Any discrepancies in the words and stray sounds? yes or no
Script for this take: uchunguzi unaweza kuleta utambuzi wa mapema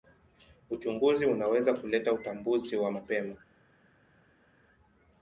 no